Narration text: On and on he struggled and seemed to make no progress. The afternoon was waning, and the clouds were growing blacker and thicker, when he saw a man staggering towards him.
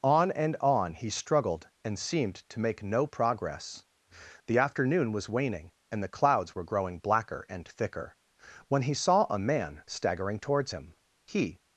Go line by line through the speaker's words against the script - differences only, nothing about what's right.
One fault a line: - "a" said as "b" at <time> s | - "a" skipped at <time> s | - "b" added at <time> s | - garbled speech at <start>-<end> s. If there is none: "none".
- "He" added at 11.3 s